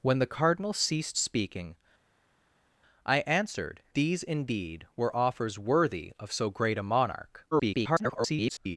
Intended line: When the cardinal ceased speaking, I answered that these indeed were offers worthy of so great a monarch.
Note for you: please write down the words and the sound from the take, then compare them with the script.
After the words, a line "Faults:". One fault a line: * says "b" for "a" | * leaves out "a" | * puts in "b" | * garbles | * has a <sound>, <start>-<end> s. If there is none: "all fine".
When the cardinal ceased speaking, I answered these indeed were offers worthy of so great a monarch. [garbled]
Faults:
* leaves out "that"
* garbles